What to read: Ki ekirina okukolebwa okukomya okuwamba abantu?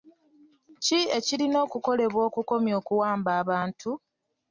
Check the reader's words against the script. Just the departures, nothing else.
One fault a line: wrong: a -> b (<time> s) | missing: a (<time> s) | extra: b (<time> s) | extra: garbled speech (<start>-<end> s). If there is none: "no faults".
no faults